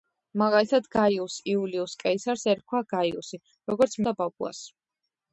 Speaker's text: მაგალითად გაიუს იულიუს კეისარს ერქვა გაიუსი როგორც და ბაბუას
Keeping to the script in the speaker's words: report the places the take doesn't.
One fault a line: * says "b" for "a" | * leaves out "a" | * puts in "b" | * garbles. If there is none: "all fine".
all fine